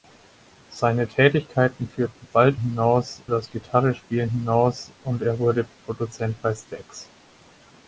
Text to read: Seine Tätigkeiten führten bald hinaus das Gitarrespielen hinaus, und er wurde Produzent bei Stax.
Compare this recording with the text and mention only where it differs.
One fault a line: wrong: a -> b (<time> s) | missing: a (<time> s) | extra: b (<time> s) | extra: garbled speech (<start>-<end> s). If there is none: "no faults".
no faults